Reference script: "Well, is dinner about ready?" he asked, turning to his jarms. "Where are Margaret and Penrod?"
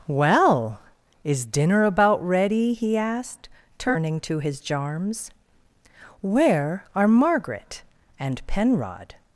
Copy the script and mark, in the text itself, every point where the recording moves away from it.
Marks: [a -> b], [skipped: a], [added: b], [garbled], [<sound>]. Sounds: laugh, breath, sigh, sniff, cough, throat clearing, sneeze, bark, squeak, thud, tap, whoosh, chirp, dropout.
"Well, is dinner about ready?" he asked, turning to his jarms. "Where are Margaret and Penrod?"